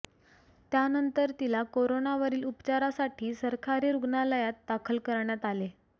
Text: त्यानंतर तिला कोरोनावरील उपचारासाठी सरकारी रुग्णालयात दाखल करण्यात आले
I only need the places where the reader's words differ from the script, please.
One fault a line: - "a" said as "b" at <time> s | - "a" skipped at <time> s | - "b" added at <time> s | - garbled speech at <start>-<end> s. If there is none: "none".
none